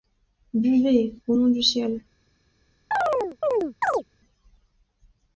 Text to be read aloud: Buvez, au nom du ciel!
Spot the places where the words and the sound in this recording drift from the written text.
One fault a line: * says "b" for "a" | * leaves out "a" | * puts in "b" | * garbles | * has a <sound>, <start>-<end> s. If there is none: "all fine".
* has a chirp, 2.9-4.0 s